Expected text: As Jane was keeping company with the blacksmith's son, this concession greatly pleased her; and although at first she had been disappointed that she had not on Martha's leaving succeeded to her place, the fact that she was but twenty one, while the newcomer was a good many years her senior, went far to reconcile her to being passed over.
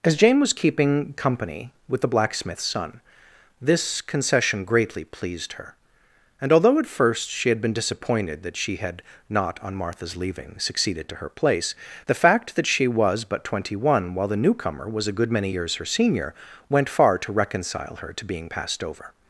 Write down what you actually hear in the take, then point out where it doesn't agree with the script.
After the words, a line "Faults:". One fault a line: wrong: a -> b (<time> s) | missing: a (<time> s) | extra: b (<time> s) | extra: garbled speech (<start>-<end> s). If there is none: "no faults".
As Jane was keeping company with the blacksmith's son, this concession greatly pleased her; and although at first she had been disappointed that she had not on Martha's leaving succeeded to her place, the fact that she was but twenty one, while the newcomer was a good many years her senior, went far to reconcile her to being passed over.
Faults:
no faults